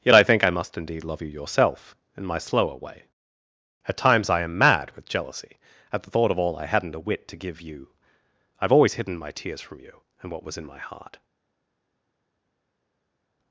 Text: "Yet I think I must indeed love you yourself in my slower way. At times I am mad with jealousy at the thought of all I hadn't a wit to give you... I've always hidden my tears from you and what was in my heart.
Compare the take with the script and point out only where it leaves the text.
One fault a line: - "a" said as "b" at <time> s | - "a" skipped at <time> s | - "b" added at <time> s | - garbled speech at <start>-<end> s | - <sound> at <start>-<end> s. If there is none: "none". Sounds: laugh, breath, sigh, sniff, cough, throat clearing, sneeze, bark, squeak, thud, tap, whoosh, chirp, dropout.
none